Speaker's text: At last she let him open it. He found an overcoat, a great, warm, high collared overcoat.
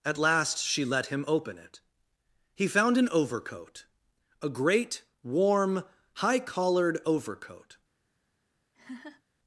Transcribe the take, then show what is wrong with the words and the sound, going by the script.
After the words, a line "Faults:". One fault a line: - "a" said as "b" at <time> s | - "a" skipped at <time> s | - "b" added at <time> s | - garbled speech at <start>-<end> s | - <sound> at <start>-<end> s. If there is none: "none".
At last she let him open it. He found an overcoat, a great, warm, high collared overcoat.
Faults:
- laugh at 8.7-9.2 s